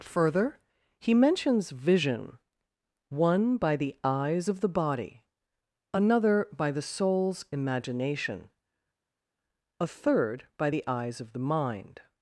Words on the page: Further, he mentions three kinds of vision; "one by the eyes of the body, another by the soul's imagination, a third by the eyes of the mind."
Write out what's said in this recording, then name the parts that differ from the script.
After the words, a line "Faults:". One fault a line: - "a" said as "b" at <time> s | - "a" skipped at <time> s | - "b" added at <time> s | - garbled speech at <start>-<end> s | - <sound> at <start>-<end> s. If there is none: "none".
Further, he mentions vision; "one by the eyes of the body, another by the soul's imagination, a third by the eyes of the mind."
Faults:
- "three kinds of" skipped at 1.7 s